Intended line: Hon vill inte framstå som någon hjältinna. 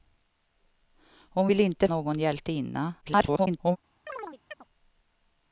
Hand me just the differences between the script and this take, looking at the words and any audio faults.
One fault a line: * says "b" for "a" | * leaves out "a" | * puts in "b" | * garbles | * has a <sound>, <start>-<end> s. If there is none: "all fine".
* leaves out "framstå som"
* garbles
* has a chirp, 4.1-4.6 s